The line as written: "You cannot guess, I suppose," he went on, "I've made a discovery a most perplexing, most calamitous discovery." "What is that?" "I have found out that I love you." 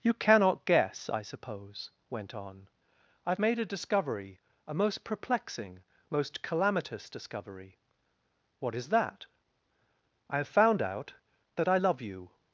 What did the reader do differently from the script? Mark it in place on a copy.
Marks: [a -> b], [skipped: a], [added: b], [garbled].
"You cannot guess, I suppose," [skipped: he] went on, "I've made a discovery a most perplexing, most calamitous discovery." "What is that?" "I have found out that I love you."